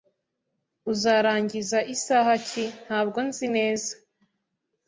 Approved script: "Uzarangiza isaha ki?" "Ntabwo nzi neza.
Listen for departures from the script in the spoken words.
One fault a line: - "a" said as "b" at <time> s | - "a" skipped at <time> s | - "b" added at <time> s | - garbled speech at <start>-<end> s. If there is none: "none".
none